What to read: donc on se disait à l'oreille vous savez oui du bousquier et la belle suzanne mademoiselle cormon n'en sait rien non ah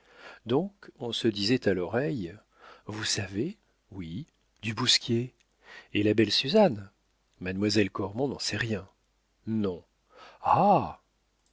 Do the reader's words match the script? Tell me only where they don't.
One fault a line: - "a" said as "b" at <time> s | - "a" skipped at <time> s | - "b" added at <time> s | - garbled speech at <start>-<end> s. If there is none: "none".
none